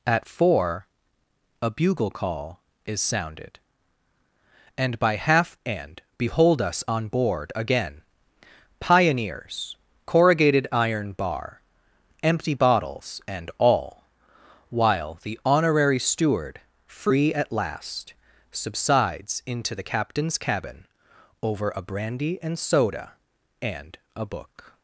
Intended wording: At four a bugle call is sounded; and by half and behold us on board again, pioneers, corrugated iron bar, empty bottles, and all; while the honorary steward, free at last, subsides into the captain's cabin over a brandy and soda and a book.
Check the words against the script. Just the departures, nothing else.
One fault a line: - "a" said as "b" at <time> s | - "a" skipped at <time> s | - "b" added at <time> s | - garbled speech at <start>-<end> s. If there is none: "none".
none